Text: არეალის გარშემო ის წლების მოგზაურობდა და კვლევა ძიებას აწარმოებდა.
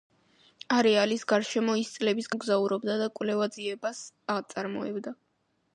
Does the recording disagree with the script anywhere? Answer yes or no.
no